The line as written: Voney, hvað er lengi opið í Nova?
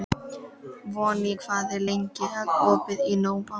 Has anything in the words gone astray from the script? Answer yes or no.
no